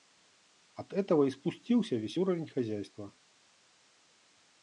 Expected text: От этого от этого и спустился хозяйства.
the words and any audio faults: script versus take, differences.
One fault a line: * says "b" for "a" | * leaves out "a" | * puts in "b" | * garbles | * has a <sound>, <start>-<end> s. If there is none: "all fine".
* says "и спустился весь уровень" for "от этого и спустился"